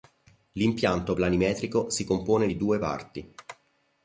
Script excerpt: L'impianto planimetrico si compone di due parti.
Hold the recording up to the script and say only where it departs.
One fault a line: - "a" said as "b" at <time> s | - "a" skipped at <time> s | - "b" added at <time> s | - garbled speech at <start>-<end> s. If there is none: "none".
none